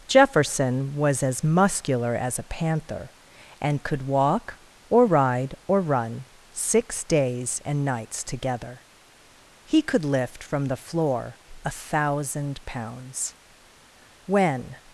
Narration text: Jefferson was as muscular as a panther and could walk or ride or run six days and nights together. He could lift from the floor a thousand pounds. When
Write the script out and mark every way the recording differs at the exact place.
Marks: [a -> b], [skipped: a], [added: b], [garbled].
Jefferson was as muscular as a panther and could walk or ride or run six days and nights together. He could lift from the floor a thousand pounds. When